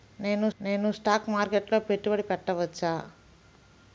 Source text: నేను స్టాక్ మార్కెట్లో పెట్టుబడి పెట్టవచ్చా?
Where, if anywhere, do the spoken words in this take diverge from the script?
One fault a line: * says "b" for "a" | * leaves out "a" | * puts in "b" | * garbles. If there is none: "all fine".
* puts in "నేను"